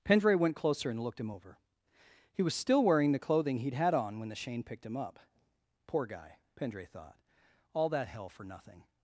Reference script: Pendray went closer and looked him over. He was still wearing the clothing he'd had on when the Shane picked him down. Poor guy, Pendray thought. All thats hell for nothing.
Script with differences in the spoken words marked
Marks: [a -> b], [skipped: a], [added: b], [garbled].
Pendray went closer and looked him over. He was still wearing the clothing he'd had on when the Shane picked him [down. -> up] Poor guy, Pendray thought. All [thats -> that] hell for nothing.